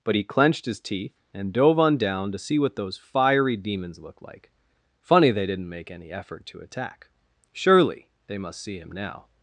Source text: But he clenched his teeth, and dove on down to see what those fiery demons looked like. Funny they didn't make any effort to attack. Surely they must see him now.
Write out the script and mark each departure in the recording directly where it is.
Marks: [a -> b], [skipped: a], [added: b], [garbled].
But he clenched his teeth, and dove on down to see what those fiery demons looked like. Funny they didn't make any effort to attack. Surely they must see him now.